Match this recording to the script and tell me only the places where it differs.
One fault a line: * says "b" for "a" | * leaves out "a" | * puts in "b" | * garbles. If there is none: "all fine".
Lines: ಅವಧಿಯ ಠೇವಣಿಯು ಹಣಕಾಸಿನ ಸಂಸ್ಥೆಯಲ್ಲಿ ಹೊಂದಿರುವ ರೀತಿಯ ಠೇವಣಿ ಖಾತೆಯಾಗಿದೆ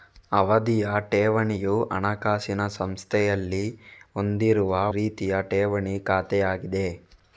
all fine